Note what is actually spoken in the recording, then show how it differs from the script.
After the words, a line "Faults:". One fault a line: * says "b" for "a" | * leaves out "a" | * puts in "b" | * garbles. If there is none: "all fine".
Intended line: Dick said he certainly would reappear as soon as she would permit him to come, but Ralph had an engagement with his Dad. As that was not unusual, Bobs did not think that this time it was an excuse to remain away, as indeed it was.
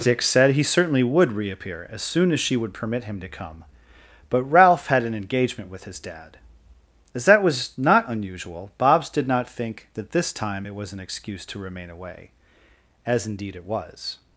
Dick said he certainly would reappear as soon as she would permit him to come, but Ralph had an engagement with his Dad. As that was not unusual, Bobs did not think that this time it was an excuse to remain away, as indeed it was.
Faults:
all fine